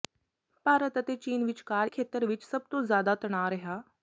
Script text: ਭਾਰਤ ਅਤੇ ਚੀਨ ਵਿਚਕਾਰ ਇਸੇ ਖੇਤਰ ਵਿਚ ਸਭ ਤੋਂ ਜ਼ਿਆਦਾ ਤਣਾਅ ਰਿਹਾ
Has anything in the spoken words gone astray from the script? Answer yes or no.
yes